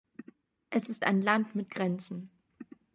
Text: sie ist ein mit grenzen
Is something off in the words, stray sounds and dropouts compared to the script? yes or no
yes